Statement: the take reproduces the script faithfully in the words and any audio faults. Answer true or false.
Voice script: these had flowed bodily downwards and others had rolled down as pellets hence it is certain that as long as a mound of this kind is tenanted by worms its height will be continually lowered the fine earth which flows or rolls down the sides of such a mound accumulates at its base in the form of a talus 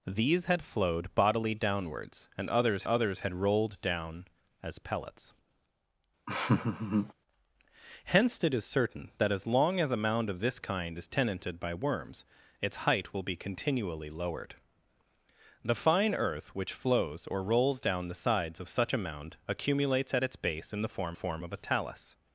false